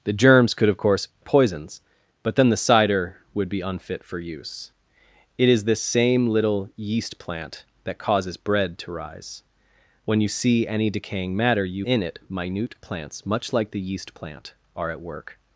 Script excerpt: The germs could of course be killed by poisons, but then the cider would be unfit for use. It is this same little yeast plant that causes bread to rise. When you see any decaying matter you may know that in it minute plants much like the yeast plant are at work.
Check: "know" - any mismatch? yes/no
yes